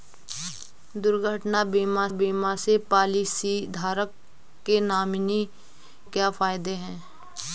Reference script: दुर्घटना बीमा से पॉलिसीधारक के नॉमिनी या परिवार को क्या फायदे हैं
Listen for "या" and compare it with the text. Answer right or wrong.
wrong